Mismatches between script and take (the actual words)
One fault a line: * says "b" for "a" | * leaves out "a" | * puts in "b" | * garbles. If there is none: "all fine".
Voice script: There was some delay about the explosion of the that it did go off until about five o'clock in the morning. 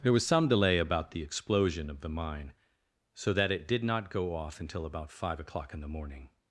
* puts in "mine so"
* puts in "not"